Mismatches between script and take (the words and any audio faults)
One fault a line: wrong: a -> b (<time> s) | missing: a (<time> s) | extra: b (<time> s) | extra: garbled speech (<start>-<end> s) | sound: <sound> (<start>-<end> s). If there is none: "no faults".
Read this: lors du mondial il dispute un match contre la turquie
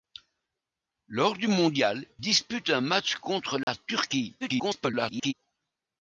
missing: il (2.1 s)
sound: dropout (3.6-3.7 s)
extra: garbled speech (4.4-5.3 s)